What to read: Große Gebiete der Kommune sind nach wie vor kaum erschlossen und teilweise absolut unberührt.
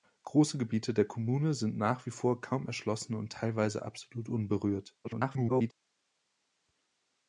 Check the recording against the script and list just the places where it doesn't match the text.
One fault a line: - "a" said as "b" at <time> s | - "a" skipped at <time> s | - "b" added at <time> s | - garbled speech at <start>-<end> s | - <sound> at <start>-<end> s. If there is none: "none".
- garbled speech at 5.0-5.7 s